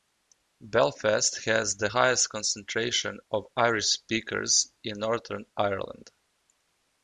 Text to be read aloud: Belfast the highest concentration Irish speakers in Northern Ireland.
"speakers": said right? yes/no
yes